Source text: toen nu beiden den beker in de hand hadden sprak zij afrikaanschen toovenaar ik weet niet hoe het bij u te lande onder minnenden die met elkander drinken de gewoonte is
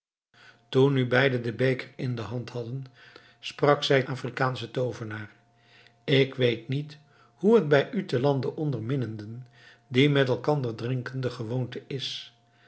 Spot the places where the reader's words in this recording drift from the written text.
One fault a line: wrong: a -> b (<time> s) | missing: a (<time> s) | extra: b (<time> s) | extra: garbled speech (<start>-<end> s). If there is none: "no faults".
no faults